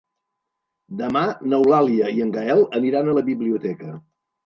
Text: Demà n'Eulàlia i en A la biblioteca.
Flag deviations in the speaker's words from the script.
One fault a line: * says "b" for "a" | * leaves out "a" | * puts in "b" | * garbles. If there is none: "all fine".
* puts in "Gaël aniran"